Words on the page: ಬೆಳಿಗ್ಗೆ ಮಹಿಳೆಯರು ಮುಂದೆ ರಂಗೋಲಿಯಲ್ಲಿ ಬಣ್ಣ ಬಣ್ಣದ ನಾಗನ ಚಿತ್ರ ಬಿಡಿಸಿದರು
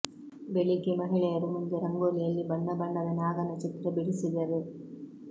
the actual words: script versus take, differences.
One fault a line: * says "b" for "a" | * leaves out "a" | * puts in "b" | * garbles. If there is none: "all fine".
all fine